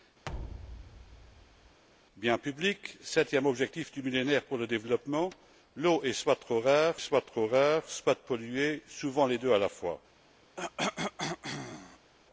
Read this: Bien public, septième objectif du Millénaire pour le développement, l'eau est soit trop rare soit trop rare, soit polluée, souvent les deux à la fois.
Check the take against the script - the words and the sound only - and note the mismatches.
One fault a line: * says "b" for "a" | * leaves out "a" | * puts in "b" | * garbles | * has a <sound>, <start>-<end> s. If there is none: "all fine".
* has a thud, 0.2-1.8 s
* has a cough, 10.6-12.1 s